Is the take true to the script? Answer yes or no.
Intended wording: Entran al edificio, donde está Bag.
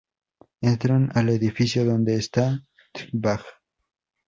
no